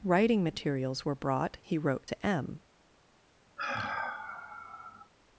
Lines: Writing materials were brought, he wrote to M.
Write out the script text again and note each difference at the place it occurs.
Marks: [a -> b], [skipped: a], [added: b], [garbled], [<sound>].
Writing materials were brought, he wrote to M. [sigh]